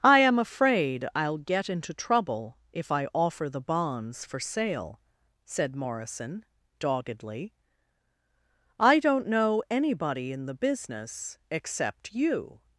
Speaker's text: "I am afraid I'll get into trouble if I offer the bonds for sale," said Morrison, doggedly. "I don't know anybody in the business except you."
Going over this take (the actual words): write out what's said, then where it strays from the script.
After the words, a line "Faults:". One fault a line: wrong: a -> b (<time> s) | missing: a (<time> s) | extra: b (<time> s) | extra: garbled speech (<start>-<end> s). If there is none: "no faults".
"I am afraid I'll get into trouble if I offer the bonds for sale," said Morrison, doggedly. "I don't know anybody in the business except you."
Faults:
no faults